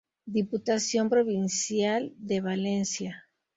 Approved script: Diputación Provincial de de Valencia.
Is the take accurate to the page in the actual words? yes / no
no